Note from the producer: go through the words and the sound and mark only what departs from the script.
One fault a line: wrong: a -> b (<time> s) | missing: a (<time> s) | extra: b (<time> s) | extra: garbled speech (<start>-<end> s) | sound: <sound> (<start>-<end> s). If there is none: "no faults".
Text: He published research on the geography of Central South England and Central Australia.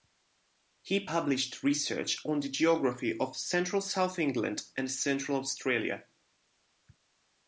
no faults